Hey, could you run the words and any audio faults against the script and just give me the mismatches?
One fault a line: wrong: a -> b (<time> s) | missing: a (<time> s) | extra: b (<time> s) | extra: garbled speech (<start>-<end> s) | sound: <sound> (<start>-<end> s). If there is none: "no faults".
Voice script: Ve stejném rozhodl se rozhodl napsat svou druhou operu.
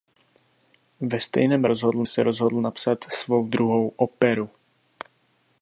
no faults